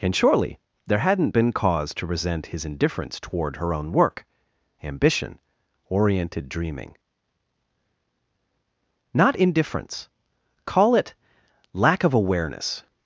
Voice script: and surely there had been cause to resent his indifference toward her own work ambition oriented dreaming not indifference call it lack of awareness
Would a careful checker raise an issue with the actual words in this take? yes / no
yes